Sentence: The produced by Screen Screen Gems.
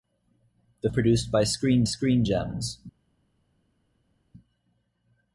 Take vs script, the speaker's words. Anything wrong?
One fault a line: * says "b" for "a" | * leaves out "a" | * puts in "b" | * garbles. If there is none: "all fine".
all fine